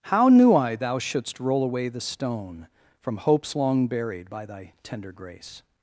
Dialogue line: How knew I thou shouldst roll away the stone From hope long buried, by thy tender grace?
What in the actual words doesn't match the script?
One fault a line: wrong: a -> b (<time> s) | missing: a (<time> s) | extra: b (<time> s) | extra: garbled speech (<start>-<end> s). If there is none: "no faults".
wrong: hope -> hopes (3.2 s)